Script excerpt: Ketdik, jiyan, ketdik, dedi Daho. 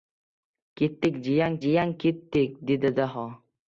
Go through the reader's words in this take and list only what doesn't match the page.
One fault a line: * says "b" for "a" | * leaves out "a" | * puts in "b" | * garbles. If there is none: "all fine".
* puts in "jiyan"